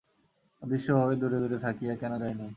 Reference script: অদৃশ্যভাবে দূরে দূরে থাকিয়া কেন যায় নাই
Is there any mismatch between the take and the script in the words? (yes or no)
no